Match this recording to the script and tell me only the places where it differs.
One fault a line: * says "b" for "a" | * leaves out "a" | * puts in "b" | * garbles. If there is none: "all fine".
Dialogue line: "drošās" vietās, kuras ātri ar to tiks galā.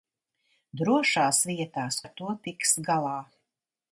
* leaves out "kuras ātri"